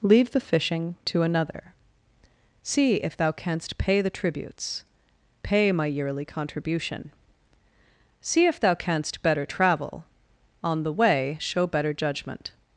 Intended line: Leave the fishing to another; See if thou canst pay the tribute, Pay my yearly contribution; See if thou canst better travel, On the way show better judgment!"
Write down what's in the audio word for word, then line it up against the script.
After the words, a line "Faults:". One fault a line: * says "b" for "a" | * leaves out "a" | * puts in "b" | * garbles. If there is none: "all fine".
Leave the fishing to another; See if thou canst pay the tributes, Pay my yearly contribution; See if thou canst better travel, On the way show better judgment!"
Faults:
* says "tributes" for "tribute"